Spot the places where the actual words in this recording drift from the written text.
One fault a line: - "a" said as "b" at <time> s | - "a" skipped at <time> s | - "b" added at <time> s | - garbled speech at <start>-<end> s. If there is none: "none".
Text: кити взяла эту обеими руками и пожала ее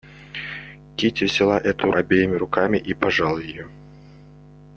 none